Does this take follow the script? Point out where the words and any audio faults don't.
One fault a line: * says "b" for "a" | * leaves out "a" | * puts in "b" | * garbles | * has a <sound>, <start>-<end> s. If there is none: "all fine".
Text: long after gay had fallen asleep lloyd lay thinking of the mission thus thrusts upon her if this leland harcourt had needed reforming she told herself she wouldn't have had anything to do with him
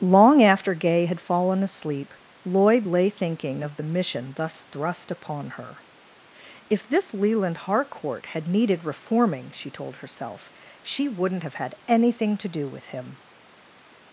* says "thrust" for "thrusts"